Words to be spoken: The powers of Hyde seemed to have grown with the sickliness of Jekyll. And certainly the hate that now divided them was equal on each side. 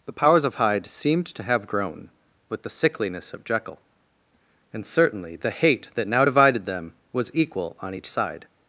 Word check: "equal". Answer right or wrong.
right